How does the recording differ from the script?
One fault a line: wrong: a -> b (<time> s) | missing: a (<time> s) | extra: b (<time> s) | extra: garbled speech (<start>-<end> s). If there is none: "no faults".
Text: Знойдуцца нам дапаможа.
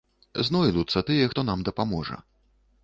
extra: тыя хто (1.1 s)